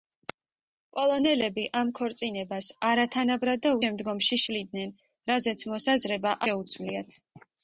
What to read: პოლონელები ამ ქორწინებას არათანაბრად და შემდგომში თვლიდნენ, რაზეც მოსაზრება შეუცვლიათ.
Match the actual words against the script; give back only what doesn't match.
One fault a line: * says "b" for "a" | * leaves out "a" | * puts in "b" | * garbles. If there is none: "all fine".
all fine